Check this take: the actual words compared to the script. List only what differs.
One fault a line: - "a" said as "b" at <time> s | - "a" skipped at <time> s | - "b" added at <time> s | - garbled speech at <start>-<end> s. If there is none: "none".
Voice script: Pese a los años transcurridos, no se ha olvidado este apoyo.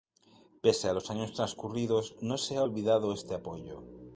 none